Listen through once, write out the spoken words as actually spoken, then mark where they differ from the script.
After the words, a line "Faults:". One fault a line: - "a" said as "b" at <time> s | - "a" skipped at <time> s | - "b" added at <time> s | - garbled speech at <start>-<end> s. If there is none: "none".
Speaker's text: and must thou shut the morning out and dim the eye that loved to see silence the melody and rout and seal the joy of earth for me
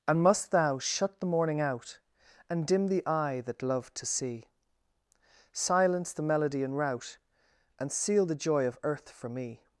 and must thou shut the morning out and dim the eye that loved to see silence the melody and rout and seal the joy of earth for me
Faults:
none